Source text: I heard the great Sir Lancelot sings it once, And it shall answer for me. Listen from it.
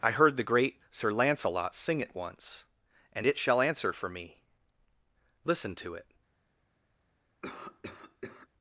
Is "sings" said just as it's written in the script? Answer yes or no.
no